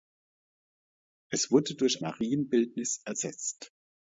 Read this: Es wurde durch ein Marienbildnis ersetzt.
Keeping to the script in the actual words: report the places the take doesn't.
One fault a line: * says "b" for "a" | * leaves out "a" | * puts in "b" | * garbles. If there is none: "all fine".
* leaves out "ein"